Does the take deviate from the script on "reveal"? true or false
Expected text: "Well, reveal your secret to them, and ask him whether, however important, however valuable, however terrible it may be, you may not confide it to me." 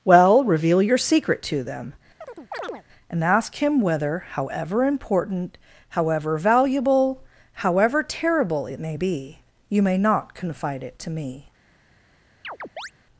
false